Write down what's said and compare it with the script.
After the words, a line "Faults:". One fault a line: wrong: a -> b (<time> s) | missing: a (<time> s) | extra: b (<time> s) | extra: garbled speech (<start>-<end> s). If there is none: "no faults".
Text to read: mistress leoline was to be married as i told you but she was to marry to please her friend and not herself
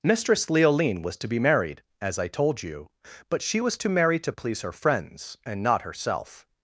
mistress leoline was to be married as i told you but she was to marry to please her friends and not herself
Faults:
wrong: friend -> friends (4.7 s)